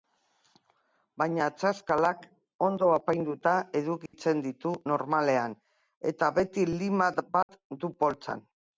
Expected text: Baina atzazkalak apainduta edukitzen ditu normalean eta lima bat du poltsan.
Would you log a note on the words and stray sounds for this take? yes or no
yes